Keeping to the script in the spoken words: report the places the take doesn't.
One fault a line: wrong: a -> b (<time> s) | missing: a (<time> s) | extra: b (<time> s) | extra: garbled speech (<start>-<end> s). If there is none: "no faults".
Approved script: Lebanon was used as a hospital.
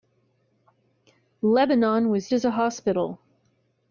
missing: used (2.3 s)